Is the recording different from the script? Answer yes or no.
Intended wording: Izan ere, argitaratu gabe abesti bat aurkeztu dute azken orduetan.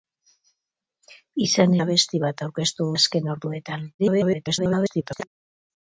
yes